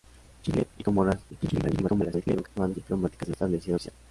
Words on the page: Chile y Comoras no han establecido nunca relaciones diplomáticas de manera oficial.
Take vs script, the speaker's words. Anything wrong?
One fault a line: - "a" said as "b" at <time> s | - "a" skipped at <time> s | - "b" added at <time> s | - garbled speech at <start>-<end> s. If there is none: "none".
- garbled speech at 1.3-2.5 s
- "establecido nunca relaciones" skipped at 2.7 s
- "manera" said as "establecido" at 3.3 s